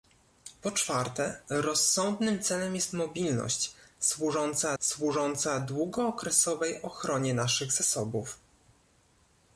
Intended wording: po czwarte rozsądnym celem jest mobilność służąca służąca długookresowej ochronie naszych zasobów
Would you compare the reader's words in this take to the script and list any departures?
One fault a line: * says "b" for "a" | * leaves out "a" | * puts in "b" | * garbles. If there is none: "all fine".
all fine